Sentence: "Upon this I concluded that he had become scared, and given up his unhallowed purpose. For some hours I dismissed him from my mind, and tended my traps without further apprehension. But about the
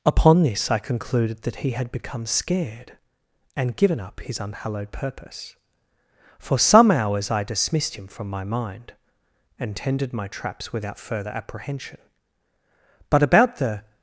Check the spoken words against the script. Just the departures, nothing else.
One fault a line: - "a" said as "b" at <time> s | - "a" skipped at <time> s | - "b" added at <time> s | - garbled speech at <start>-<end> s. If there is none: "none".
none